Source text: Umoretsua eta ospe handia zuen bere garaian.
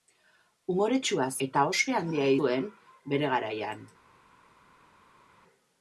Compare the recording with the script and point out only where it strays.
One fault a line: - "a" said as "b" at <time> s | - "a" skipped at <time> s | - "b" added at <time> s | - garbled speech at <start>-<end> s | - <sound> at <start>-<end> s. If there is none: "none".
none